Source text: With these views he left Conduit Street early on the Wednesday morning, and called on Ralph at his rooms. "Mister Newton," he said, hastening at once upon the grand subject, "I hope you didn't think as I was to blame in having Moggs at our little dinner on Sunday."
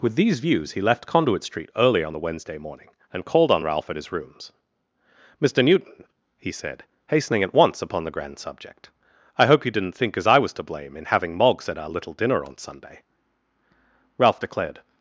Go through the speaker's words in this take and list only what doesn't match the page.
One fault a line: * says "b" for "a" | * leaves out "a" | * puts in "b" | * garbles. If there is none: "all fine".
* puts in "Ralph declared"